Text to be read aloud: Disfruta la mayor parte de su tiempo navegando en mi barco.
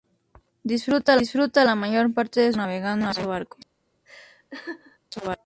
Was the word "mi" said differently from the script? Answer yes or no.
yes